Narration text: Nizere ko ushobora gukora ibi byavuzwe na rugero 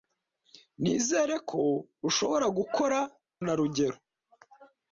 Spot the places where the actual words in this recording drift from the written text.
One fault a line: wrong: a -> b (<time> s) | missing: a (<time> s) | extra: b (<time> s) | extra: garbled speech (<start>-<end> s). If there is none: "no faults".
missing: ibi byavuzwe (3.0 s)